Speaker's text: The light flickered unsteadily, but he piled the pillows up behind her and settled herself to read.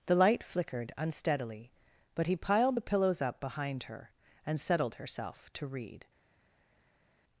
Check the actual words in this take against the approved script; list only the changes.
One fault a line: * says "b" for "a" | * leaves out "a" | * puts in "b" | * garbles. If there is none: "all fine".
all fine